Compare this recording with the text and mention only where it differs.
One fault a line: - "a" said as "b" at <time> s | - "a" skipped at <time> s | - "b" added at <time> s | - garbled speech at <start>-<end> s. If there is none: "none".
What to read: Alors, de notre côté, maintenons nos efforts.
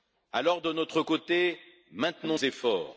- "nos" skipped at 2.4 s